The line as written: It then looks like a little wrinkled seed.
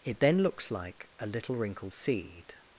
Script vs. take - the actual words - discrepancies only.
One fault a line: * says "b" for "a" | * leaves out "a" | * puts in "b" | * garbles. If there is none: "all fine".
all fine